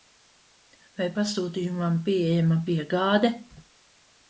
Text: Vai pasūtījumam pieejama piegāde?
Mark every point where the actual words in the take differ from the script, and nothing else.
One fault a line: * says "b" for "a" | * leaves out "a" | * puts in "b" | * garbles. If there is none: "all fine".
all fine